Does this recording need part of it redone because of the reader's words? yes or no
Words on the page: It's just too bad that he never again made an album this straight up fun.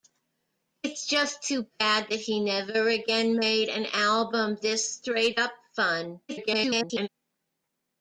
yes